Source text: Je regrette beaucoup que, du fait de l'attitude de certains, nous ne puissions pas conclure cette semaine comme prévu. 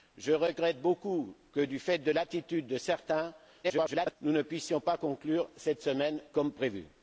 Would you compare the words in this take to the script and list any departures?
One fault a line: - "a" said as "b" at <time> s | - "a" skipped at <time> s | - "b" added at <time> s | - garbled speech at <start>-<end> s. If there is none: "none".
- garbled speech at 3.6-4.2 s